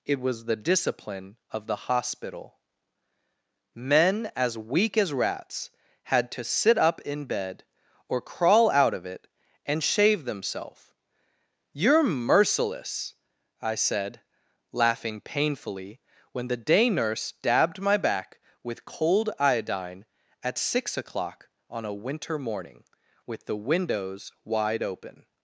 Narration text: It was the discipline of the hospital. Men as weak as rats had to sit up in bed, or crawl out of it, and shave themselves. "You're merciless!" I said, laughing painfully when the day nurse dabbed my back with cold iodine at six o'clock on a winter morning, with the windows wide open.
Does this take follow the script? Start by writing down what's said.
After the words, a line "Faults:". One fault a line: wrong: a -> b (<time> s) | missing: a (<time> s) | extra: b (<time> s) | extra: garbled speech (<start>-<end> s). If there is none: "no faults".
It was the discipline of the hospital. Men as weak as rats had to sit up in bed, or crawl out of it, and shave themselves. "You're merciless!" I said, laughing painfully when the day nurse dabbed my back with cold iodine at six o'clock on a winter morning, with the windows wide open.
Faults:
no faults